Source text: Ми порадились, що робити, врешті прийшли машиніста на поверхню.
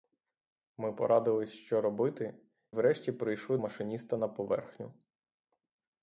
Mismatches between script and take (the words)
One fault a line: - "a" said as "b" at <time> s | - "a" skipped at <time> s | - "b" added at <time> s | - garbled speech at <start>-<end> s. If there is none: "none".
none